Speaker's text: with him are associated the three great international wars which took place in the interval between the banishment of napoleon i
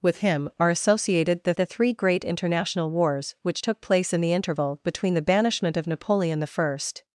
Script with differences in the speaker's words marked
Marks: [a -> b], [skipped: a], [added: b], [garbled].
with him are associated the [added: the] three great international wars which took place in the interval between the banishment of napoleon i